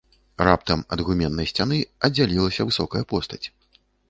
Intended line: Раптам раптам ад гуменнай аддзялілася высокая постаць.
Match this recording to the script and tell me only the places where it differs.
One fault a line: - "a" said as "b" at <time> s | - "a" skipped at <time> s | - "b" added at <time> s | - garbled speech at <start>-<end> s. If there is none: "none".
- "раптам" skipped at 0.8 s
- "сцяны" added at 1.5 s